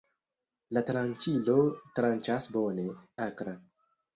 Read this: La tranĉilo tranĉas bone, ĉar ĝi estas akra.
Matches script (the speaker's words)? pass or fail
fail